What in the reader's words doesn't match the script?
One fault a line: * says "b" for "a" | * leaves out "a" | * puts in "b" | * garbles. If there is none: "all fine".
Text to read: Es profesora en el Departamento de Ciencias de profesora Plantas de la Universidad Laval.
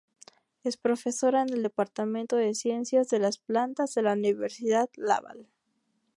* says "las" for "profesora"